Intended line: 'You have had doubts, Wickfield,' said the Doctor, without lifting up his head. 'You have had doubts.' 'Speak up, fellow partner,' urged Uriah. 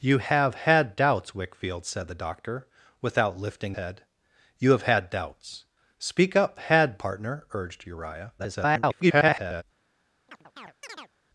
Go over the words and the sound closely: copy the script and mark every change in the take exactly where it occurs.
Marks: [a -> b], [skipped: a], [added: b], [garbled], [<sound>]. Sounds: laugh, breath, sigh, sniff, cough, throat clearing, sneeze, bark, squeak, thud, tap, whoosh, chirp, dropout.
'You have had doubts, Wickfield,' said the Doctor, without lifting [skipped: up his] head. 'You have had doubts.' 'Speak up, [fellow -> had] partner,' urged Uriah. [garbled] [chirp]